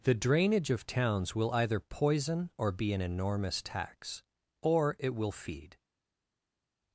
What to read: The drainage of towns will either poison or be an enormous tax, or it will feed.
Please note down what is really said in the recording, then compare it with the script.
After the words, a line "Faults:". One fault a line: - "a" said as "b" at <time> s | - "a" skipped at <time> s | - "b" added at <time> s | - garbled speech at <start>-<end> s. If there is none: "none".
The drainage of towns will either poison or be an enormous tax, or it will feed.
Faults:
none